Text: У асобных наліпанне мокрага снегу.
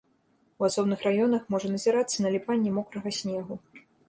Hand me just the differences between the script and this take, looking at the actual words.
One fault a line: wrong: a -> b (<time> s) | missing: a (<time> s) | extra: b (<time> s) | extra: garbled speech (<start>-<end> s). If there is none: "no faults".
extra: раёнах можа назірацца (1.1 s)